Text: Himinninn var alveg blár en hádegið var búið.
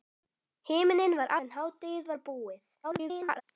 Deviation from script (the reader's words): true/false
true